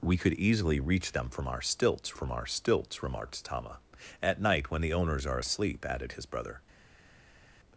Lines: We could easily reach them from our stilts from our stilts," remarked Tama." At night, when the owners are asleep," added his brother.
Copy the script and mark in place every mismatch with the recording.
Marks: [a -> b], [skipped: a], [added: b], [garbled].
We could easily reach them from our stilts from our stilts," remarked Tama." At night, when the owners are asleep," added his brother.